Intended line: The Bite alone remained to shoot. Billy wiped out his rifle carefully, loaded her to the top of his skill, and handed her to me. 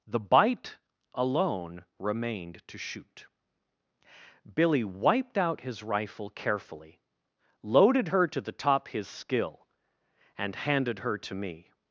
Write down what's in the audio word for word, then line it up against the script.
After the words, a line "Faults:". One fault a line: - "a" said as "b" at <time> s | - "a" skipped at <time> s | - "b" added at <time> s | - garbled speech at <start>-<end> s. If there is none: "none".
The Bite alone remained to shoot. Billy wiped out his rifle carefully, loaded her to the top his skill, and handed her to me.
Faults:
- "of" skipped at 8.9 s